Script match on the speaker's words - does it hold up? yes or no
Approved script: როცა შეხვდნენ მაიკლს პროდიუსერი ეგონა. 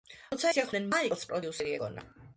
yes